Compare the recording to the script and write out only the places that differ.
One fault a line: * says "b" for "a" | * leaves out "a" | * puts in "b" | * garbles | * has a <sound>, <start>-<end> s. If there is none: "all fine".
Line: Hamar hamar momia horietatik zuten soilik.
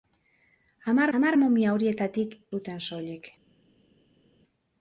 all fine